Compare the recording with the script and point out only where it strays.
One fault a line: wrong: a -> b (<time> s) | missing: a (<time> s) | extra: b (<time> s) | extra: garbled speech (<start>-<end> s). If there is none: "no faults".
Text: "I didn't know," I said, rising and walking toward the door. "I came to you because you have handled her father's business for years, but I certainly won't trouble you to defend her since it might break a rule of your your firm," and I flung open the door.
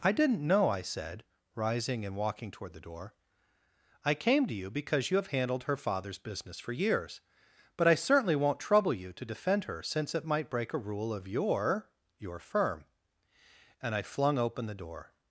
no faults